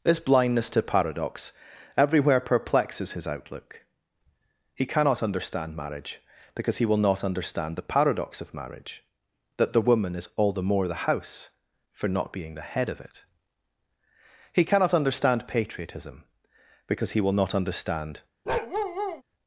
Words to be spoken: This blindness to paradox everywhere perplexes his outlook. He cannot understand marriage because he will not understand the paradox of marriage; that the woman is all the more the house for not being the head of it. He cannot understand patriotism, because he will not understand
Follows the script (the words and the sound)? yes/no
no